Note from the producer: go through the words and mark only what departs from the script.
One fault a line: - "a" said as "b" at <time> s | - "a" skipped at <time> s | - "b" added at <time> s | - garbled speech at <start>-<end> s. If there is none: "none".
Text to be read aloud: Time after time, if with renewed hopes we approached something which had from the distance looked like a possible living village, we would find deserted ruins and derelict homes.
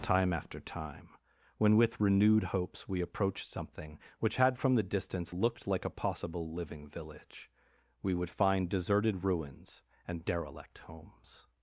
- "if" said as "when" at 1.6 s